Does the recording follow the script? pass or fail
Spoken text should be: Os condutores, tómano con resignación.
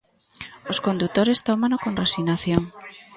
pass